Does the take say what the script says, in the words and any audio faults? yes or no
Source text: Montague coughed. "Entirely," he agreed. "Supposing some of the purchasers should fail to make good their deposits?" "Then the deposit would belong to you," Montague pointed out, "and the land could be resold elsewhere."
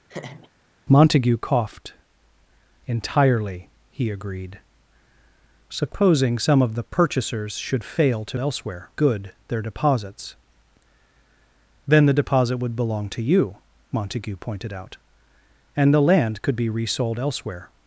no